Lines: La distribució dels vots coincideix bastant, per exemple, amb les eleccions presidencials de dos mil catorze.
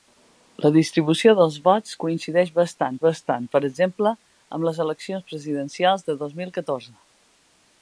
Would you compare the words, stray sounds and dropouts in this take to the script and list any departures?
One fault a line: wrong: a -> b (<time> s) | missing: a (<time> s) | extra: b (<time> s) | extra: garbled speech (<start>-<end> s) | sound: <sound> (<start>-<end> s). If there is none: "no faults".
extra: bastant (3.0 s)